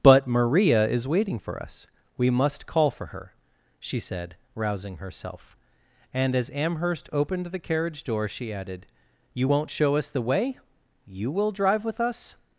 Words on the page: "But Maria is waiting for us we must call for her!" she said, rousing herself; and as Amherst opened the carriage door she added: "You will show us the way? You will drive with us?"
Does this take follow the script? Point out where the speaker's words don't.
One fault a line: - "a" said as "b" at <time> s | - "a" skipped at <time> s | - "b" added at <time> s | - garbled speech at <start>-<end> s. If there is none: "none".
- "will" said as "won't" at 9.5 s